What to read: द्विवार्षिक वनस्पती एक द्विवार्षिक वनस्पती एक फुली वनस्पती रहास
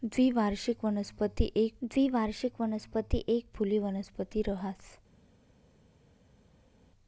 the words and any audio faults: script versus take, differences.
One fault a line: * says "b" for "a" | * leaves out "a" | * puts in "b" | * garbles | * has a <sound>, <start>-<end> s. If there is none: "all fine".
all fine